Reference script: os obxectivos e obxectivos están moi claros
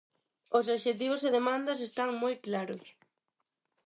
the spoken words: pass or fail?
fail